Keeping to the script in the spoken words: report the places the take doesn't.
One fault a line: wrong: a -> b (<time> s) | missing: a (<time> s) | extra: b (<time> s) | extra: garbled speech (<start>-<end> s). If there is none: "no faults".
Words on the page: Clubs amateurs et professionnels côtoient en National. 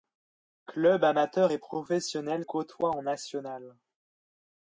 no faults